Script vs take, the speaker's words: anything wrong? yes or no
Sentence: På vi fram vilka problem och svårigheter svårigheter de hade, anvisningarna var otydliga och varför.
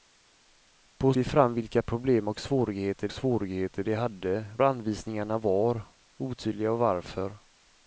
no